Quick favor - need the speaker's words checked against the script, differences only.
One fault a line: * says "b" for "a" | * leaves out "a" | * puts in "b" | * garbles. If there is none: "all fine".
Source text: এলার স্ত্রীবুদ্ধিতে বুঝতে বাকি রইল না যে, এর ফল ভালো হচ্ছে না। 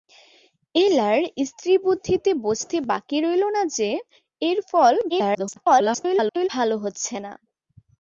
* garbles